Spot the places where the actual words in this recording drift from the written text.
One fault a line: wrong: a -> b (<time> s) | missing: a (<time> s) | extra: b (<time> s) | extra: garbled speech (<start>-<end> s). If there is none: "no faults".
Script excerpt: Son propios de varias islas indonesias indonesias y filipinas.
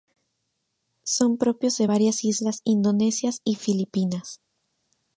missing: indonesias (3.4 s)